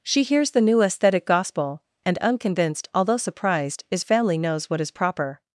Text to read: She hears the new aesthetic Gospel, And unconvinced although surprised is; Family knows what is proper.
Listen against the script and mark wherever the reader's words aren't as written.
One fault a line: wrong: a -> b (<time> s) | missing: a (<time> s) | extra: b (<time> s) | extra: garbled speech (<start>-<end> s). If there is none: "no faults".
no faults